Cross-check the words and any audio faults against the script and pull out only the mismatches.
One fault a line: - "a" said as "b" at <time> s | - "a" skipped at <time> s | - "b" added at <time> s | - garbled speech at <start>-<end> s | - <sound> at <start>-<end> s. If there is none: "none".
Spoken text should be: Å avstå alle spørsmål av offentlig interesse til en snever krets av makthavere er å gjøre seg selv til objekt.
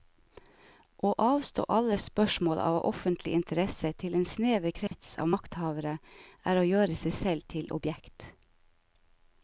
- dropout at 4.9-4.9 s